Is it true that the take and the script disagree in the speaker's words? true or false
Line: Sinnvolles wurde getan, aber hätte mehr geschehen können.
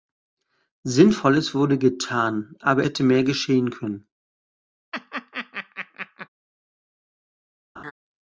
false